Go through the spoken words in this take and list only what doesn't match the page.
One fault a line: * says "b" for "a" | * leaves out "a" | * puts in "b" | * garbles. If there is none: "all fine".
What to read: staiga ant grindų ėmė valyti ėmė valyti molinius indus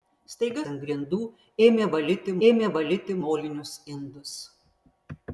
all fine